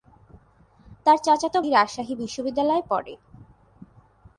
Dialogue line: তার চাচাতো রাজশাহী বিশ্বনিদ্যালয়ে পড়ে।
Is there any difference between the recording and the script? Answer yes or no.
no